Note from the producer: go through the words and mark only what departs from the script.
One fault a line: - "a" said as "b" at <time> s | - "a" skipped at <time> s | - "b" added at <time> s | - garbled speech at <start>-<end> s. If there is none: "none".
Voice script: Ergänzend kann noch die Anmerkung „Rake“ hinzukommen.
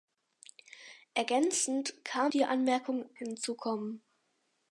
- "noch" skipped at 2.3 s
- "Rake" skipped at 3.1 s